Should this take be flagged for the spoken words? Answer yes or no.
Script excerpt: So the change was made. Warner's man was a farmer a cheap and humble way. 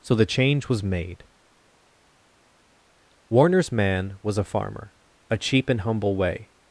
no